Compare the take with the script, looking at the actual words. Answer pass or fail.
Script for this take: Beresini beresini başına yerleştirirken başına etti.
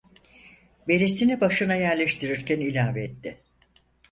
fail